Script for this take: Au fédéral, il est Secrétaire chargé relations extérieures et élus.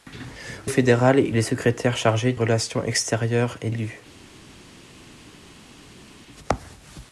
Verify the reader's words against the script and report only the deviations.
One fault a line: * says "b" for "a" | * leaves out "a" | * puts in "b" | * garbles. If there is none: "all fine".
all fine